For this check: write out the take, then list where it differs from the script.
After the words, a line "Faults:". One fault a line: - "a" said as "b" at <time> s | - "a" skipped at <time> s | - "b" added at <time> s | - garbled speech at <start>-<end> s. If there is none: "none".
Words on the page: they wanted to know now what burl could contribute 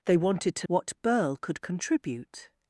they wanted to what burl could contribute
Faults:
- "know now" skipped at 0.7 s